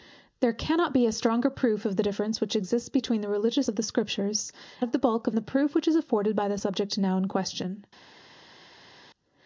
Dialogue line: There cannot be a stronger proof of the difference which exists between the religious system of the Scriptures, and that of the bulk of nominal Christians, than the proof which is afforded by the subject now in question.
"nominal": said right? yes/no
no